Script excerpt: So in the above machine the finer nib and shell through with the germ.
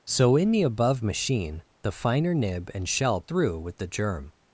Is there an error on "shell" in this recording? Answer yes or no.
no